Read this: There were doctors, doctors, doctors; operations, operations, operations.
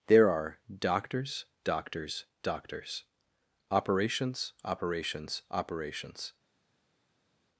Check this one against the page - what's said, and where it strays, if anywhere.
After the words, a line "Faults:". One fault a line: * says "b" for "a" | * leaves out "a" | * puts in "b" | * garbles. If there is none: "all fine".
There are doctors, doctors, doctors; operations, operations, operations.
Faults:
* says "are" for "were"